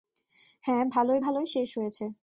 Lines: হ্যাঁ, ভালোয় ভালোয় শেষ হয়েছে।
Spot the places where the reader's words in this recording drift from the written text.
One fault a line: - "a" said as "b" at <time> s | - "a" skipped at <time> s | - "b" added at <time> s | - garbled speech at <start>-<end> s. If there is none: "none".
none